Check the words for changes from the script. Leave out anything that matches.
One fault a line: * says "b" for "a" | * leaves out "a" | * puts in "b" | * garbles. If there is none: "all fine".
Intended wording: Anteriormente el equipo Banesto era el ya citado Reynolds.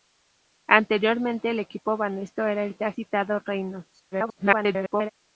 * garbles